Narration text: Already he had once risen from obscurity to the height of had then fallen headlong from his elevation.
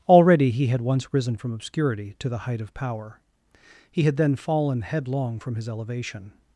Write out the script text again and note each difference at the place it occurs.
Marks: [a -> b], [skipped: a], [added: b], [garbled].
Already he had once risen from obscurity to the height of [added: power He] had then fallen headlong from his elevation.